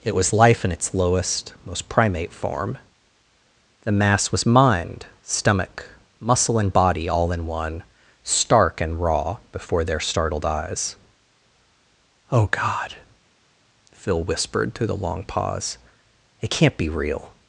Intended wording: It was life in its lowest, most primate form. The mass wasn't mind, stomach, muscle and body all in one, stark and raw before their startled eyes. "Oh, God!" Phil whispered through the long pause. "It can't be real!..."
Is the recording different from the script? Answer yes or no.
yes